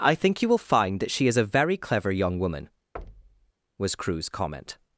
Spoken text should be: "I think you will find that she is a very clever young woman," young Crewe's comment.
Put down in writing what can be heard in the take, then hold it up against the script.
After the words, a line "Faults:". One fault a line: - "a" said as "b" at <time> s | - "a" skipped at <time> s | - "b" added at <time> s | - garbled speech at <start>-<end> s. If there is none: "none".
"I think you will find that she is a very clever young woman," was Crewe's comment.
Faults:
- "young" said as "was" at 3.8 s